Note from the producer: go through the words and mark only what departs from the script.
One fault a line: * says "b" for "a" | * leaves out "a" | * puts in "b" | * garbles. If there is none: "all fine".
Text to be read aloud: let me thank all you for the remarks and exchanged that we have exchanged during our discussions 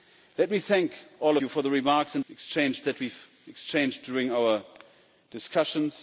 all fine